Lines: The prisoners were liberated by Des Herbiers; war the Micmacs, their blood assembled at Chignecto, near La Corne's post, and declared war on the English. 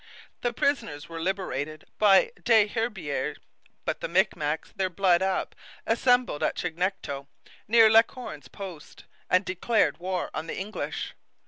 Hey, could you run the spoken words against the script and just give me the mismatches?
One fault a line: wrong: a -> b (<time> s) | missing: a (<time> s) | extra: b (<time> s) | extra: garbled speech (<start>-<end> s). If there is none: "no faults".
wrong: war -> but (3.9 s)
extra: up (5.2 s)